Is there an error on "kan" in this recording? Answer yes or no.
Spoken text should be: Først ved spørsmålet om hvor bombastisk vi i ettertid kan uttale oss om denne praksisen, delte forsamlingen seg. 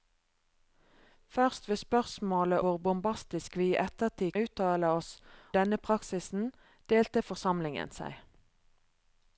yes